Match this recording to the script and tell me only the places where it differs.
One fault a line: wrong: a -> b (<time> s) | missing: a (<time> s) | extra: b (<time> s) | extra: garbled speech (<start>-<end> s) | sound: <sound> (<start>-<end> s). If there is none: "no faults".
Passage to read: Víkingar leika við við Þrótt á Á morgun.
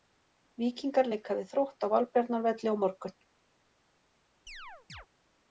missing: við (1.5 s)
extra: Valbjarnarvelli (2.0 s)
sound: chirp (4.5-5.1 s)